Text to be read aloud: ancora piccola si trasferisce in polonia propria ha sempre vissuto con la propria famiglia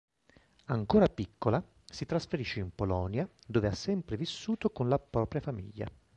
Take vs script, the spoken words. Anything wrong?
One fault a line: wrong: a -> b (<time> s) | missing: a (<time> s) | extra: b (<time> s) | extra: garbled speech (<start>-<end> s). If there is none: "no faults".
wrong: propria -> dove (3.5 s)